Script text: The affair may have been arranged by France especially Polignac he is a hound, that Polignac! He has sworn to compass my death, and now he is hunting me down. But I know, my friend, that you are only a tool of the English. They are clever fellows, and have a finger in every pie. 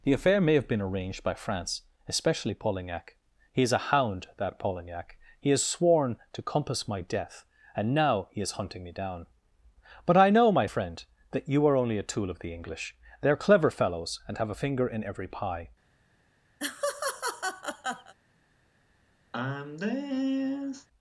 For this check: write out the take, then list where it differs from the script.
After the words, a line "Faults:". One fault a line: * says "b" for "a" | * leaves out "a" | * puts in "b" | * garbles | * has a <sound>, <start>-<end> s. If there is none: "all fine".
The affair may have been arranged by France especially Polignac he is a hound, that Polignac! He has sworn to compass my death, and now he is hunting me down. But I know, my friend, that you are only a tool of the English. They are clever fellows, and have a finger in every pie.
Faults:
* has a laugh, 16.6-18.1 s
* has a sigh, 19.3-20.9 s